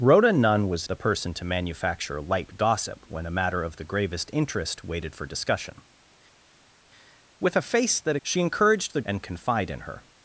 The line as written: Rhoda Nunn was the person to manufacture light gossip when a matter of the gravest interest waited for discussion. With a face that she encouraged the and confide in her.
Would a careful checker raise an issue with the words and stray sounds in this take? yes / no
no